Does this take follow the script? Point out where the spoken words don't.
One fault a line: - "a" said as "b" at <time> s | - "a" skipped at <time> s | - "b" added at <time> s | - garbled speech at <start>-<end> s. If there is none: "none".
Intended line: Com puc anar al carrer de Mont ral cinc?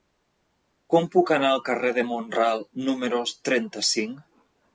- "número trenta" added at 2.9 s